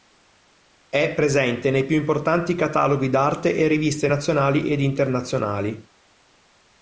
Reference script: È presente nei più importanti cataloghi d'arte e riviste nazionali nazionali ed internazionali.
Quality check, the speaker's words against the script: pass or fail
fail